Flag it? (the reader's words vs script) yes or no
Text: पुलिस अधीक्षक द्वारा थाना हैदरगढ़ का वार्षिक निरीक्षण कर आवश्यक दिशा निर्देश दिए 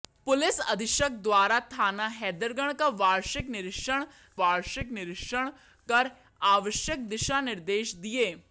yes